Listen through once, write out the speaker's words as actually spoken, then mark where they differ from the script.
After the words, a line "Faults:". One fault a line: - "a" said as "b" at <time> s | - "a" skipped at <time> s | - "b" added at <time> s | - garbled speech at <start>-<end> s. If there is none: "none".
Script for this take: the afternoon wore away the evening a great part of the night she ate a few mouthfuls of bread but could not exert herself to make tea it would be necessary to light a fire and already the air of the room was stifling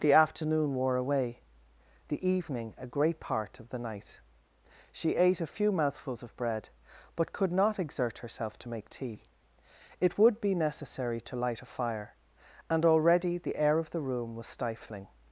the afternoon wore away the evening a great part of the night she ate a few mouthfuls of bread but could not exert herself to make tea it would be necessary to light a fire and already the air of the room was stifling
Faults:
none